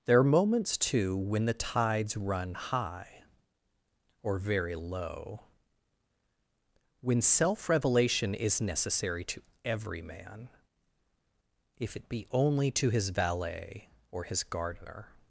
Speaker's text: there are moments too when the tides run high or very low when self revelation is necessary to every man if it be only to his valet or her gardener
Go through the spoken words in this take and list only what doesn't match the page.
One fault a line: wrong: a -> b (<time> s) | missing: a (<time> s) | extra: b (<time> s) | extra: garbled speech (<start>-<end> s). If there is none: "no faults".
wrong: her -> his (14.2 s)